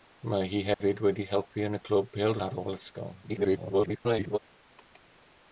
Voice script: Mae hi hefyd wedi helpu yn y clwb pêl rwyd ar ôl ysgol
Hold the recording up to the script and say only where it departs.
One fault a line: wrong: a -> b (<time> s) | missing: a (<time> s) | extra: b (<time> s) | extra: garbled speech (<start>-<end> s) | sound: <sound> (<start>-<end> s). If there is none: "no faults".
sound: dropout (0.7-0.8 s)
missing: rwyd (2.4 s)
extra: garbled speech (3.2-4.4 s)